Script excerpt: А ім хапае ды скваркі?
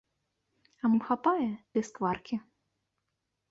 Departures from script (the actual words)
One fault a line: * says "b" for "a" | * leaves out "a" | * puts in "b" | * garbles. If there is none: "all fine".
all fine